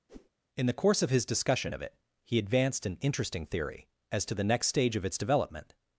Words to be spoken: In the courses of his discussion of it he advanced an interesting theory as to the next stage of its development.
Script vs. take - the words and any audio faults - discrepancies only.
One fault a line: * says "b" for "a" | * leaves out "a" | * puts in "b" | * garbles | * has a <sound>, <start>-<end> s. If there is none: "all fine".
* has a whoosh, 0.1-0.3 s
* says "course" for "courses"